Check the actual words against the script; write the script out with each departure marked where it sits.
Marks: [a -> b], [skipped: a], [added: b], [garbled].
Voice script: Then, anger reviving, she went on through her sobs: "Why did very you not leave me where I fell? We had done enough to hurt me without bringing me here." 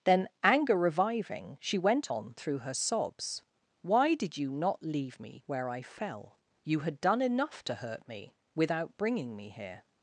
Then, anger reviving, she went on through her sobs: "Why did [skipped: very] you not leave me where I fell? [We -> You] had done enough to hurt me without bringing me here."